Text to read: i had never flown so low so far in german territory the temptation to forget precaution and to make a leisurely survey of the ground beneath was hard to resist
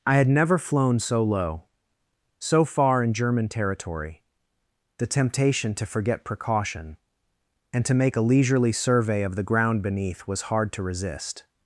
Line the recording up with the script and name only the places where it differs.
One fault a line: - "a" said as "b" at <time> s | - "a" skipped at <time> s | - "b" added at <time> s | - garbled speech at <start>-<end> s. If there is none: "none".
none